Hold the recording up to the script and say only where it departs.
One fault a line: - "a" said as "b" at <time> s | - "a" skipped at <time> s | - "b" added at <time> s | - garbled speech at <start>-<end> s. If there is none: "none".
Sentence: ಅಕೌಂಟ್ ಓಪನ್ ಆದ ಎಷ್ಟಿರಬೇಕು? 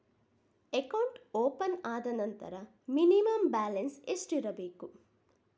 - "ನಂತರ ಮಿನಿಮಂ ಬ್ಯಾಲೆನ್ಸ್" added at 2.1 s